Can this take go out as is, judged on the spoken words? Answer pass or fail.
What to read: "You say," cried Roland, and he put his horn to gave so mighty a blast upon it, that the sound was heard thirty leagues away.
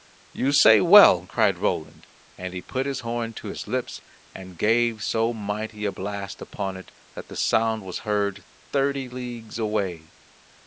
fail